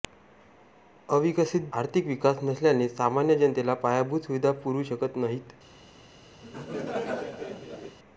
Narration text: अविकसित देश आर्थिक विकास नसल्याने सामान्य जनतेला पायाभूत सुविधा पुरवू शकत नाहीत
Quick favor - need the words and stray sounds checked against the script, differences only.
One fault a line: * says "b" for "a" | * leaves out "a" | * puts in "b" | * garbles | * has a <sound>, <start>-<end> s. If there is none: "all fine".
* leaves out "देश"
* has a laugh, 6.4-8.0 s